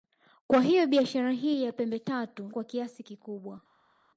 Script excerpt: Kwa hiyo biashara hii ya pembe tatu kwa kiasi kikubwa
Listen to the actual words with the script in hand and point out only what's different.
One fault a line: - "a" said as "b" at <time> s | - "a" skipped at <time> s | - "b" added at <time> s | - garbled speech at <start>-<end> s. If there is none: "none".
none